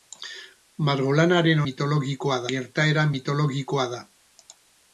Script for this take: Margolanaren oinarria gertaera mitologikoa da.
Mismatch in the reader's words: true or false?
true